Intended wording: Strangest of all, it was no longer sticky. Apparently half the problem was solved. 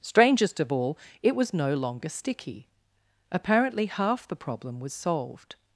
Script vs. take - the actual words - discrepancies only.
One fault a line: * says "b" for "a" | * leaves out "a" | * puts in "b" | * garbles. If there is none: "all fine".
all fine